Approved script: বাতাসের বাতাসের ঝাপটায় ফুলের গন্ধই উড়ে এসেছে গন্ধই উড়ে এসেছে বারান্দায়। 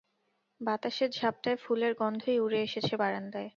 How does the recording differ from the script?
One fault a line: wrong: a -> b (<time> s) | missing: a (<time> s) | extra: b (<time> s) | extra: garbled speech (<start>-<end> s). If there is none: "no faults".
missing: বাতাসের (1.1 s)
missing: গন্ধই উড়ে এসেছে (3.0 s)